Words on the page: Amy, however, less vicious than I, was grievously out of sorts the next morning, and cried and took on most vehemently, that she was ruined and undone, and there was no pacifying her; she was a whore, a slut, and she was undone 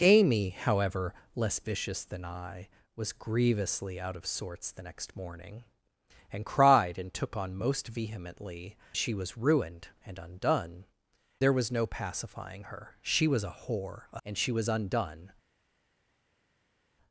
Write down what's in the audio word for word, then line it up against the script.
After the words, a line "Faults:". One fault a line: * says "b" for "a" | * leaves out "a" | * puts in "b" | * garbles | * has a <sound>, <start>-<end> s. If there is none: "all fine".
Amy, however, less vicious than I, was grievously out of sorts the next morning, and cried and took on most vehemently, she was ruined and undone, there was no pacifying her; she was a whore, a and she was undone
Faults:
* leaves out "that"
* leaves out "and"
* leaves out "slut"